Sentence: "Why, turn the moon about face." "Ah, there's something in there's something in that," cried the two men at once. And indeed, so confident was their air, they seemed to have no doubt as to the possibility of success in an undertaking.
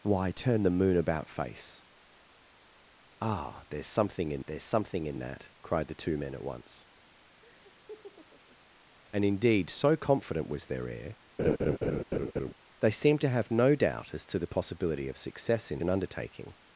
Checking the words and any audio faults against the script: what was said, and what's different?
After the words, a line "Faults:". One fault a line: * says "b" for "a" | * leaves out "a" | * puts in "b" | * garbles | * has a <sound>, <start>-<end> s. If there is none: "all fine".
"Why, turn the moon about face." "Ah, there's something in there's something in that," cried the two men at once. And indeed, so confident was their air, they seemed to have no doubt as to the possibility of success in an undertaking.
Faults:
* has a laugh, 7.4-8.6 s
* has a laugh, 11.4-12.5 s